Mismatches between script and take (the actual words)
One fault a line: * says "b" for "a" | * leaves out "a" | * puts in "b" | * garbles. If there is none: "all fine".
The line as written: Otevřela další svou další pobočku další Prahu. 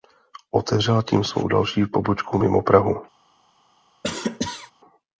* says "tím" for "další"
* says "mimo" for "další"